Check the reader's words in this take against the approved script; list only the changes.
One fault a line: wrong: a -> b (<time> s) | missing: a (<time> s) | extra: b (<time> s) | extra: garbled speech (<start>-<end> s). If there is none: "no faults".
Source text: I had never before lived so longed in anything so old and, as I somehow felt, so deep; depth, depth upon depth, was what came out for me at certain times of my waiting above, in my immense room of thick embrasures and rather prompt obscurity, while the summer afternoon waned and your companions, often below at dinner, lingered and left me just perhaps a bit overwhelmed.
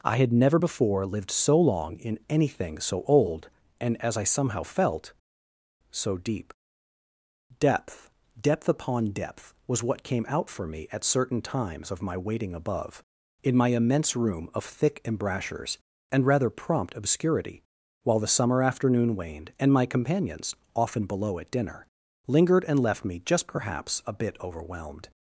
wrong: longed -> long (1.6 s)
wrong: your -> my (19.7 s)